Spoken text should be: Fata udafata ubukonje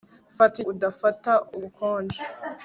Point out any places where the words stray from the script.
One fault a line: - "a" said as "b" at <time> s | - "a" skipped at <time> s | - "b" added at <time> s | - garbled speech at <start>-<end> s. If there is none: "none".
none